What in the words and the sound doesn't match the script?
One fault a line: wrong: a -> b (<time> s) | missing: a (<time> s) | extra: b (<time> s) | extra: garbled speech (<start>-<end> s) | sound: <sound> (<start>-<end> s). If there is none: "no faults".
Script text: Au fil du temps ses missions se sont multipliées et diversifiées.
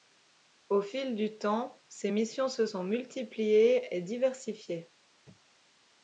no faults